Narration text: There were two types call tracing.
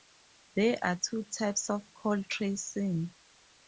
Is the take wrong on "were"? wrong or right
wrong